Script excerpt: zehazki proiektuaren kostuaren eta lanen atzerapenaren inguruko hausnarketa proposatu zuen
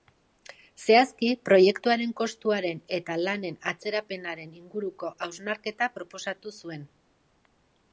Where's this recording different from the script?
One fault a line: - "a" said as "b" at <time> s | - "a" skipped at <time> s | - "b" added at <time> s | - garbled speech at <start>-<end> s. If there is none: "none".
none